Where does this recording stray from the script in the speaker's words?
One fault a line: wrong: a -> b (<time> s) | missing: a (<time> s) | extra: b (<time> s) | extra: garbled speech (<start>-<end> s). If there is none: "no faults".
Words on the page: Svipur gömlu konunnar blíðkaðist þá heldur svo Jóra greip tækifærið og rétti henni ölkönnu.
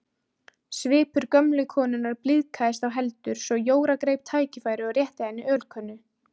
no faults